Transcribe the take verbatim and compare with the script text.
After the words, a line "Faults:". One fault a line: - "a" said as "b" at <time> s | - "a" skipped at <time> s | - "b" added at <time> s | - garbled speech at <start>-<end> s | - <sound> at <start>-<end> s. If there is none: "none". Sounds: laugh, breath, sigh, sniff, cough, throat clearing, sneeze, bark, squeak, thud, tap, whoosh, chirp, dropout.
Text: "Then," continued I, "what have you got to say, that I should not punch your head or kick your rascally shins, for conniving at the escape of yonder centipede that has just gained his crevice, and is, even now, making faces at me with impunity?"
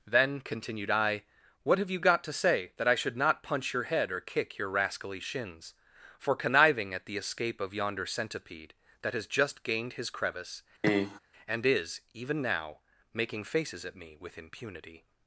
"Then," continued I, "what have you got to say, that I should not punch your head or kick your rascally shins, for conniving at the escape of yonder centipede that has just gained his crevice, and is, even now, making faces at me with impunity?"
Faults:
- cough at 10.8-11.2 s